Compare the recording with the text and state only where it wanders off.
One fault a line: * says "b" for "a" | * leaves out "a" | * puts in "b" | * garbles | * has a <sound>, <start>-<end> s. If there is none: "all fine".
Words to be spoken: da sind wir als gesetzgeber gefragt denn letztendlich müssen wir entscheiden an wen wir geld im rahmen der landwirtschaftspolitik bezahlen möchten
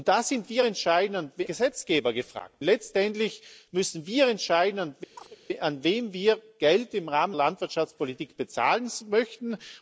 * says "entscheiden" for "als"
* leaves out "denn"
* has a chirp, 5.1-5.4 s
* leaves out "der"